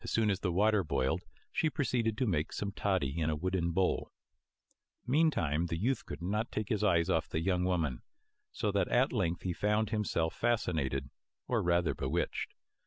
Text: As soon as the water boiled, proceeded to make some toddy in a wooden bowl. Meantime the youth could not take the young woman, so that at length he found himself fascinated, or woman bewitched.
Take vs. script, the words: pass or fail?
fail